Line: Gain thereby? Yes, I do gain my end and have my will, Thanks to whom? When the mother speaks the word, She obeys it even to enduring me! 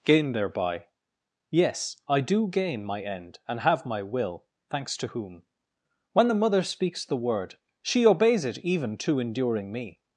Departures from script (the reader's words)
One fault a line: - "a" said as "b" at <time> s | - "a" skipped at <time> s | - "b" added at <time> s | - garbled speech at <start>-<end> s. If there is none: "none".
none